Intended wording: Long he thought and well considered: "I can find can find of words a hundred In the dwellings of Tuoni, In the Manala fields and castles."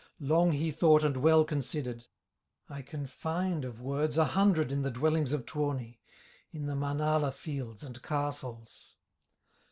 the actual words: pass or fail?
fail